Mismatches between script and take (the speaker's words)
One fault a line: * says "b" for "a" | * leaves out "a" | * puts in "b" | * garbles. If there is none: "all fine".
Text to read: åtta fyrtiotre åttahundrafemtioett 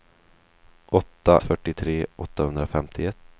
all fine